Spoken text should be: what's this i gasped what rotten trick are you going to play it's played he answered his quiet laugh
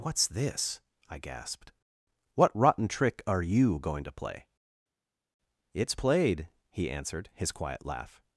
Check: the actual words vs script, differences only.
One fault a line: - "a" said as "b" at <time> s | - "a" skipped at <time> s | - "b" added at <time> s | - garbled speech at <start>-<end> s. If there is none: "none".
none